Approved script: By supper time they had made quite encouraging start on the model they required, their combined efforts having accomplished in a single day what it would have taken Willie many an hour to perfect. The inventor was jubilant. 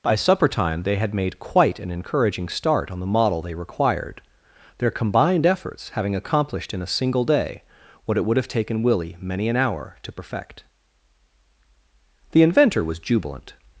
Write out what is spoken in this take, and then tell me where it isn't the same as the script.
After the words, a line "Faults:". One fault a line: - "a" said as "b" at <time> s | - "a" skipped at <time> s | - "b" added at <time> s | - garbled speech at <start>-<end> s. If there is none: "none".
By supper time they had made quite an encouraging start on the model they required, their combined efforts having accomplished in a single day what it would have taken Willie many an hour to perfect. The inventor was jubilant.
Faults:
- "an" added at 1.8 s